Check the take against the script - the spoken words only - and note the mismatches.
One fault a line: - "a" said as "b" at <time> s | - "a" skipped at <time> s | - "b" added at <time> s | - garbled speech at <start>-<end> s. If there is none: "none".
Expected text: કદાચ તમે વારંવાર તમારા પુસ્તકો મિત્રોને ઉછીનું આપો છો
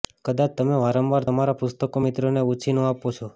none